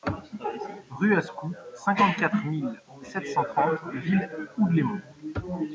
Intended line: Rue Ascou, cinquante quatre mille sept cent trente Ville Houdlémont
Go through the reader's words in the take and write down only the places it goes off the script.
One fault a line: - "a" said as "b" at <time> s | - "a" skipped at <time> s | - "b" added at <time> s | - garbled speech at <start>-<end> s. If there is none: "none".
none